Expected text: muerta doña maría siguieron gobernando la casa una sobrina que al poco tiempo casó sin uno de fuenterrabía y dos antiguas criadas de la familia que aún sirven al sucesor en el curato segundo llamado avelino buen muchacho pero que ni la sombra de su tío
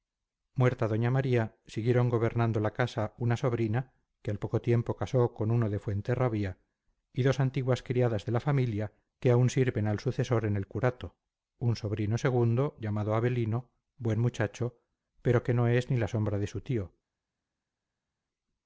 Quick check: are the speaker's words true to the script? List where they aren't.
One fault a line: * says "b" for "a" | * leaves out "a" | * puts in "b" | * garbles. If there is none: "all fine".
* says "con" for "sin"
* puts in "un sobrino"
* puts in "no es"